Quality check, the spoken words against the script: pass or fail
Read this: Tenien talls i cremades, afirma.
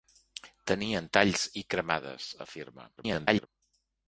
fail